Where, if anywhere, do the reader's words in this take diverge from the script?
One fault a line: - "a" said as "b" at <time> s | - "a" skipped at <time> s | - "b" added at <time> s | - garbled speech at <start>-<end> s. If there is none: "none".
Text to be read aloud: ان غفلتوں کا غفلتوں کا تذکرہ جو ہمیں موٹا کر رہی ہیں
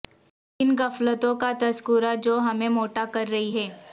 - "غفلتوں کا" skipped at 1.5 s